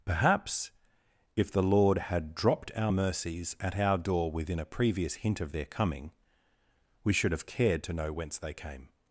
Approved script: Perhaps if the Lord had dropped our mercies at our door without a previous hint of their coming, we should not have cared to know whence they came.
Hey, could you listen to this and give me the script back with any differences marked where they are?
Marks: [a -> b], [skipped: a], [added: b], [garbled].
Perhaps if the Lord had dropped our mercies at our door [without -> within] a previous hint of their coming, we should [skipped: not] have cared to know whence they came.